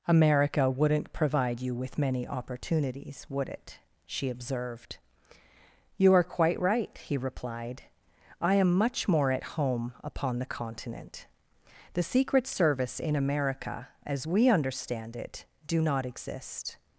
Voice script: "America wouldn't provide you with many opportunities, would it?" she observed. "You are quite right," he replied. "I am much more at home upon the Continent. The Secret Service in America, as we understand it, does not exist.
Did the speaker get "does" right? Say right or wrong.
wrong